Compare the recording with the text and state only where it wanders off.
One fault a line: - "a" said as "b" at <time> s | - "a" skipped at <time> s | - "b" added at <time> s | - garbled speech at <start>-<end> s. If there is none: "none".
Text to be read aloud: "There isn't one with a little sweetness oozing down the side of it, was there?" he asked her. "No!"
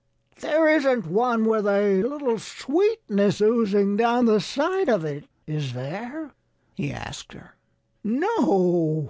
- "was" said as "is" at 5.5 s